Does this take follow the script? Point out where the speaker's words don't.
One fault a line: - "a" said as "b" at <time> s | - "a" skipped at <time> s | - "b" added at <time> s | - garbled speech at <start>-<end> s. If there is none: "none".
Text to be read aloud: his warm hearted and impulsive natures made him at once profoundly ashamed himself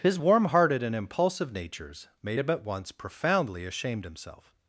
none